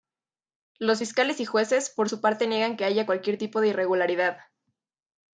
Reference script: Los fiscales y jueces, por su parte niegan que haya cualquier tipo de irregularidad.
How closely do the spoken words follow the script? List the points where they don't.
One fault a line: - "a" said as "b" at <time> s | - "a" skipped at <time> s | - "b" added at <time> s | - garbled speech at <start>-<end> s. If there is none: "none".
none